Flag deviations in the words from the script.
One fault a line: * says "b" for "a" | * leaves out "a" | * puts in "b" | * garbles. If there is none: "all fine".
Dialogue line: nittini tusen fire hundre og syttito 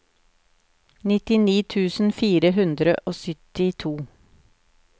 all fine